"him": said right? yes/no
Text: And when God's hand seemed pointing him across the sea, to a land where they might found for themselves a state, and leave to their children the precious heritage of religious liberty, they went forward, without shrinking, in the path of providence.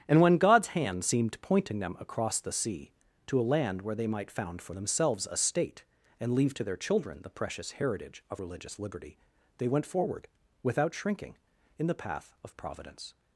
no